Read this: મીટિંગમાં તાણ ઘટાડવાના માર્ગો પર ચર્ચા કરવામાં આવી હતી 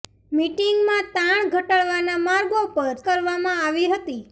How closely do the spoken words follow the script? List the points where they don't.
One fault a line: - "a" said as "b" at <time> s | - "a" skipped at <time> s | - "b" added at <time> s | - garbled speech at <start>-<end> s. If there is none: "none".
- "ચર્ચા" skipped at 3.0 s